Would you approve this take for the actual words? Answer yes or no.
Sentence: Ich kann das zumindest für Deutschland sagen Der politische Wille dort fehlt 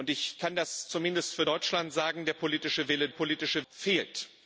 no